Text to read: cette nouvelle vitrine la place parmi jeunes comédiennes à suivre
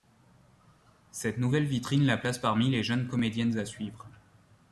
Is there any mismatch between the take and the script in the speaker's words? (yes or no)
yes